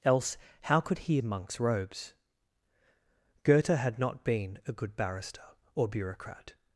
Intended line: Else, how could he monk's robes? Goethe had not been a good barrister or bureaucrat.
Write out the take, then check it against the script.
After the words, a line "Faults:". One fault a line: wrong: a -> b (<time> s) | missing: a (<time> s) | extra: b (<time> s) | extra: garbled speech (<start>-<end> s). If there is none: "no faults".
Else, how could he monk's robes? Goethe had not been a good barrister or bureaucrat.
Faults:
no faults